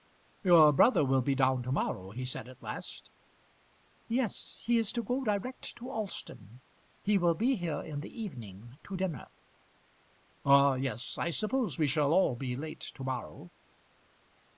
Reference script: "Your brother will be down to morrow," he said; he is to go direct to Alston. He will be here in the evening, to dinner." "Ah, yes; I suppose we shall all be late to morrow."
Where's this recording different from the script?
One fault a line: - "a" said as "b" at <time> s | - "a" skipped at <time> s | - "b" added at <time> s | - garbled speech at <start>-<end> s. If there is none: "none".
- "at last Yes" added at 2.5 s